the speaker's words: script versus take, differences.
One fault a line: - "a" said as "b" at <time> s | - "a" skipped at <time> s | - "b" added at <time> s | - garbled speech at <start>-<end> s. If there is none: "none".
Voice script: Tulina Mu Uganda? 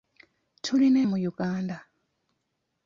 none